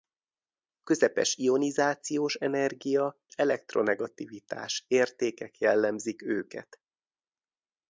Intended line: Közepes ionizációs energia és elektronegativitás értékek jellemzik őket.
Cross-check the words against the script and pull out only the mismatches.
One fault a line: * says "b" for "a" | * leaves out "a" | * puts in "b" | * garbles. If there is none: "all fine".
* leaves out "és"